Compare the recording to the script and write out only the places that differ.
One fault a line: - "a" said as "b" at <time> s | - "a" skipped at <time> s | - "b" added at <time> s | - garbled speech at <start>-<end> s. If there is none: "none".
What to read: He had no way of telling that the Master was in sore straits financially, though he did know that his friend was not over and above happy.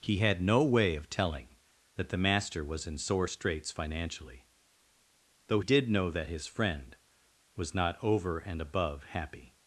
- "he" skipped at 5.6 s